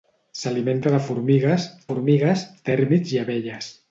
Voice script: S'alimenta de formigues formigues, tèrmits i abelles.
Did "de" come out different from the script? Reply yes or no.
no